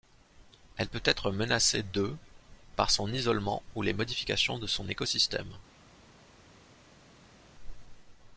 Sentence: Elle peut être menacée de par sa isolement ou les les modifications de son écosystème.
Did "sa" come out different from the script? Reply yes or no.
yes